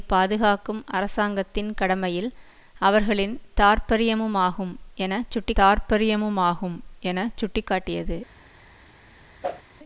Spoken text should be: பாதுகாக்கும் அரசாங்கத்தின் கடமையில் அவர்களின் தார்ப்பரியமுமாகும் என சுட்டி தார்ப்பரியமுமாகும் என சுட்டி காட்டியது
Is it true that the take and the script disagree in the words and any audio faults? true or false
true